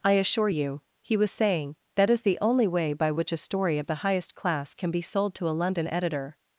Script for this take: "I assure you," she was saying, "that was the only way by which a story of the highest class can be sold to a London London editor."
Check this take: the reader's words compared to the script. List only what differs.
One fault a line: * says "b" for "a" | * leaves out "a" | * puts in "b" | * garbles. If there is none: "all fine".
* says "he" for "she"
* says "is" for "was"
* leaves out "London"